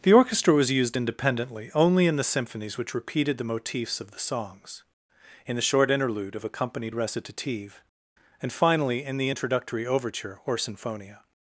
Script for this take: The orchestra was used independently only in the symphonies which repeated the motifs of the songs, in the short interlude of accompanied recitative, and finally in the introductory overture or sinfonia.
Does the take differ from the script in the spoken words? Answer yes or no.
no